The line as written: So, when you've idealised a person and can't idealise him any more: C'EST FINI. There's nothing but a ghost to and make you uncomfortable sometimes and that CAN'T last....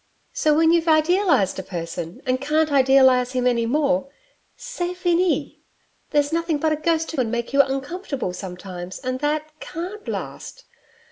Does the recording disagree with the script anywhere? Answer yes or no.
no